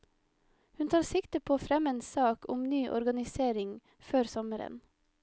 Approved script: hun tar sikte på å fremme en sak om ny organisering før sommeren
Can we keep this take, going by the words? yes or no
yes